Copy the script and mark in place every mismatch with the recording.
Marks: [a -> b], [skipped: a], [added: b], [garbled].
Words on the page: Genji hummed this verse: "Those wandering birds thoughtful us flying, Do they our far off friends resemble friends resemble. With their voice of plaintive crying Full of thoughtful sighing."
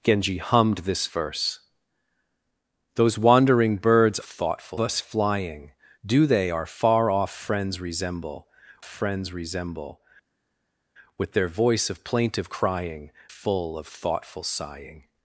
Genji hummed this verse: "Those wandering birds thoughtful us flying, Do they our far off friends resemble friends resemble. With their voice of plaintive crying Full of thoughtful sighing."